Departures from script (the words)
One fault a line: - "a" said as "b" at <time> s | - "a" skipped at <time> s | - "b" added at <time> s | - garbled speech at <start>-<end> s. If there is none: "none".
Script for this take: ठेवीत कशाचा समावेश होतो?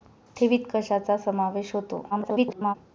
- garbled speech at 2.1-2.8 s